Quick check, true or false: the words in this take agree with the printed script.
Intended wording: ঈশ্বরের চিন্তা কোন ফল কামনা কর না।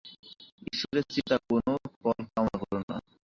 true